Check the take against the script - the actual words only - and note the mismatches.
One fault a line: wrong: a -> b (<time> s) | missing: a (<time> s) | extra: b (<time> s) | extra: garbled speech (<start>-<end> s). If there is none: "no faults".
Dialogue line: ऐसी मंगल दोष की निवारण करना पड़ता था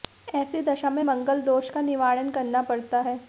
extra: दशा में (0.6 s)
wrong: की -> का (1.7 s)
wrong: था -> है (3.0 s)